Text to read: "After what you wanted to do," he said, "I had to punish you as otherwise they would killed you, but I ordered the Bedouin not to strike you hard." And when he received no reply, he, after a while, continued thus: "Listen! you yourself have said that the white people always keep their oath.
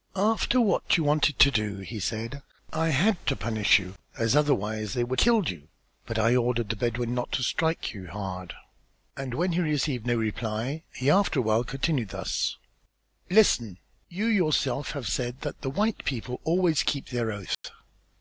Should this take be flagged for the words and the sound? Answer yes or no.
yes